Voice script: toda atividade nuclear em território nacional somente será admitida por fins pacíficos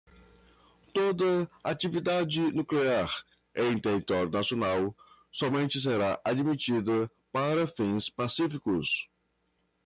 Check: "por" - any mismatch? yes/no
yes